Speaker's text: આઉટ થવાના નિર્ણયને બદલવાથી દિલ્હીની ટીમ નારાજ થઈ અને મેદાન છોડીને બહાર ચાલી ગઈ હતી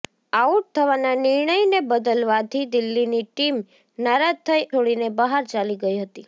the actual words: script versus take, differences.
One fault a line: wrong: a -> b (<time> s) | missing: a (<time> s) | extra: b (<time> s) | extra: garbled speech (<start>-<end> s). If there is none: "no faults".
missing: અને મેદાન (4.7 s)